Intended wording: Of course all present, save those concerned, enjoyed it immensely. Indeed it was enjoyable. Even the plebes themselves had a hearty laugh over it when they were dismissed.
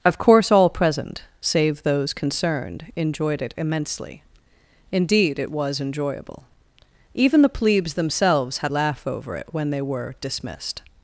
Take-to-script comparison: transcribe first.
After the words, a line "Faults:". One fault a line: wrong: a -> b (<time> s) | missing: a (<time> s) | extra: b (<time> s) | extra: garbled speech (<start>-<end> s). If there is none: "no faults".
Of course all present, save those concerned, enjoyed it immensely. Indeed it was enjoyable. Even the plebes themselves had laugh over it when they were dismissed.
Faults:
missing: a hearty (8.7 s)